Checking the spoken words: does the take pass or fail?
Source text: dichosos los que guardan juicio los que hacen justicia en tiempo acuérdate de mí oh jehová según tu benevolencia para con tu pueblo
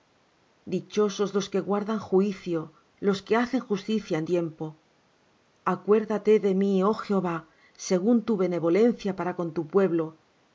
pass